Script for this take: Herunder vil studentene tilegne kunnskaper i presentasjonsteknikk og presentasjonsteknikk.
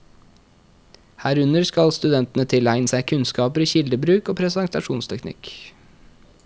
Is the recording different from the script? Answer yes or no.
yes